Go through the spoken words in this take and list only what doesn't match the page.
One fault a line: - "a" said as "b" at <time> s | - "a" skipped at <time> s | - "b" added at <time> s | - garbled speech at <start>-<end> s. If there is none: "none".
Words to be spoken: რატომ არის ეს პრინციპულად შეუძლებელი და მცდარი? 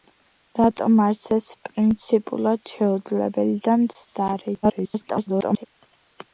- garbled speech at 4.6-5.7 s